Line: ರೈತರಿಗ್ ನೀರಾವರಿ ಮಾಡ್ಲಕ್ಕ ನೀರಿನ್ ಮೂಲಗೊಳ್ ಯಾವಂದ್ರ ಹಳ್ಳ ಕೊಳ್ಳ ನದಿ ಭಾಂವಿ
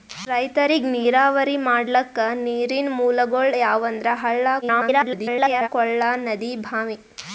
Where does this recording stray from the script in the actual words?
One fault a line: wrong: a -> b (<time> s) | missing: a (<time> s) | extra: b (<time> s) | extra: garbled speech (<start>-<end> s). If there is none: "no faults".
extra: garbled speech (4.6-5.7 s)